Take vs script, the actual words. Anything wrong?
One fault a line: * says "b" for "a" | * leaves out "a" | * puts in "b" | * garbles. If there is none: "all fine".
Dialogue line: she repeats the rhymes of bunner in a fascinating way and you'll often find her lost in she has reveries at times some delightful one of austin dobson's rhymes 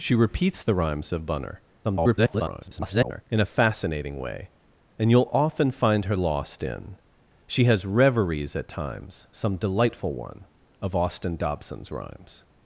* garbles